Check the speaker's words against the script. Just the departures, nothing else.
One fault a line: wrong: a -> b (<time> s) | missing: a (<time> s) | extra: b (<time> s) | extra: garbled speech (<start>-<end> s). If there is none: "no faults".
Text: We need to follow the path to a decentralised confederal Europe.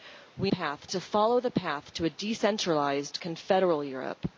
wrong: need -> path (0.5 s)